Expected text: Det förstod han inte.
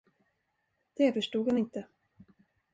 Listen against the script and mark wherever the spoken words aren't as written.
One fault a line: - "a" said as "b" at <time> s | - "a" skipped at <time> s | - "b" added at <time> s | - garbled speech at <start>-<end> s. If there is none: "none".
none